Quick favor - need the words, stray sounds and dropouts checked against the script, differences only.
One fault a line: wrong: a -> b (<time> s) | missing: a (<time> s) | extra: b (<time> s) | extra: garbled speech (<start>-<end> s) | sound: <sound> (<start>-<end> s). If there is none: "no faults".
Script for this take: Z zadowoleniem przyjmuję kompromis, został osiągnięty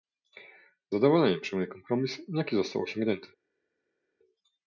extra: jaki (2.3 s)